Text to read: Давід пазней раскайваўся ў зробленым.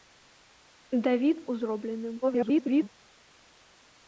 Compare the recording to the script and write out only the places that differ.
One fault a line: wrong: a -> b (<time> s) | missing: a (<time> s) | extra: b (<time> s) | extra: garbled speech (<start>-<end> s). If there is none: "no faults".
missing: пазней раскайваўся (1.4 s)
extra: garbled speech (2.2-2.9 s)